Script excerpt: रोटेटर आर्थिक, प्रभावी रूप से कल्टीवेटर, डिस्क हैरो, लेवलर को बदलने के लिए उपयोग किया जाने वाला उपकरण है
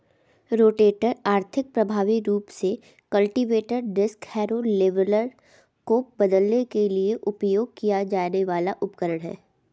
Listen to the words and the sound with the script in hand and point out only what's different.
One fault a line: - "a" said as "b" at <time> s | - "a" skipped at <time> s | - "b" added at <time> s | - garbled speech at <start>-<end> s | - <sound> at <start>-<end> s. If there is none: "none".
none